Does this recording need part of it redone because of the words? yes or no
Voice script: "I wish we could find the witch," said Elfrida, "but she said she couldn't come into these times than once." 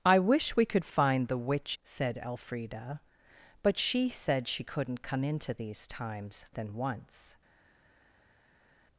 no